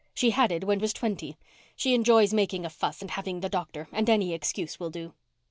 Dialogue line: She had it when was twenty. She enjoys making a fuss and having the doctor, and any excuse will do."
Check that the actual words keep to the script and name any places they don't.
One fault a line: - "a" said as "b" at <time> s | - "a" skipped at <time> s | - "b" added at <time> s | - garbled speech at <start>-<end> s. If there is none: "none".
none